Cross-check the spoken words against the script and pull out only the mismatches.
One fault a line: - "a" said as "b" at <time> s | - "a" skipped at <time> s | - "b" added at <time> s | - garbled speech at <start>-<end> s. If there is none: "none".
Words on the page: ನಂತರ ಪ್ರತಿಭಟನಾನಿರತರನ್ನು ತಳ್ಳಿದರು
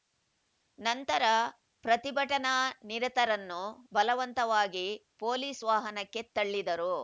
- "ಬಲವಂತವಾಗಿ ಪೊಲೀಸ್ ವಾಹನಕ್ಕೆ" added at 3.9 s